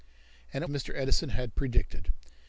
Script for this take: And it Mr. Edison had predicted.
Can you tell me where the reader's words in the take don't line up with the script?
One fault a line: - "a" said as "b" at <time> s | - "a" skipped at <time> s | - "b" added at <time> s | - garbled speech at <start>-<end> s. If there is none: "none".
none